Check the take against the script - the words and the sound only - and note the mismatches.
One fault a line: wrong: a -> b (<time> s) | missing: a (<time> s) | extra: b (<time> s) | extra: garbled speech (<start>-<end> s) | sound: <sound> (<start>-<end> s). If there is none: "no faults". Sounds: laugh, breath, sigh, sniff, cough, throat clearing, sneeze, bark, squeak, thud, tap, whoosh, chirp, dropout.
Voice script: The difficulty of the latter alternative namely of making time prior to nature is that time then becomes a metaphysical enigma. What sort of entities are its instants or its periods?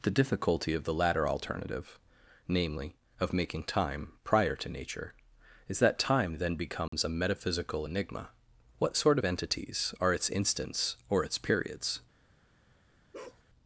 sound: dropout (6.9-6.9 s)
sound: bark (13.1-13.4 s)